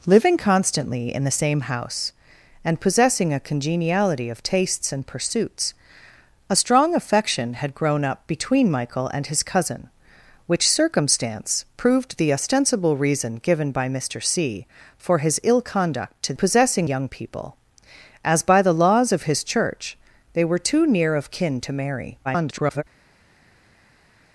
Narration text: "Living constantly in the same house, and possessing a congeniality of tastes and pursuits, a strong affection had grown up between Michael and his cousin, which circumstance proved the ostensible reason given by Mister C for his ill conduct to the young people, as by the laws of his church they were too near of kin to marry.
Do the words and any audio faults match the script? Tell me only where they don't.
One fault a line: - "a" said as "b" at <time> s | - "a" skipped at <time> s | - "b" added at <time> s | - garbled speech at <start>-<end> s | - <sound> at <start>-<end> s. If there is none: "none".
- "the" said as "possessing" at 16.4 s
- garbled speech at 22.2-22.8 s